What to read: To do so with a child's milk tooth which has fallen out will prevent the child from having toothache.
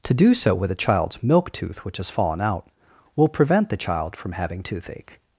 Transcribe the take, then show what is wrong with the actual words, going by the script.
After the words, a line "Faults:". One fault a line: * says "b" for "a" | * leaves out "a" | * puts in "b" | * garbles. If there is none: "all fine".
To do so with a child's milk tooth which has fallen out will prevent the child from having toothache.
Faults:
all fine